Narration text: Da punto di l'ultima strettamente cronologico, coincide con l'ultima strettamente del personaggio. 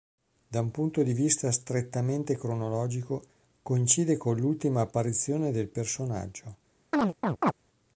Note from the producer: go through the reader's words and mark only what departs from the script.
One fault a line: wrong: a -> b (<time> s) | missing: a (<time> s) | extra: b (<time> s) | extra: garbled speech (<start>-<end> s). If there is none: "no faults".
extra: un (0.6 s)
wrong: l'ultima -> vista (1.1 s)
wrong: strettamente -> apparizione (4.8 s)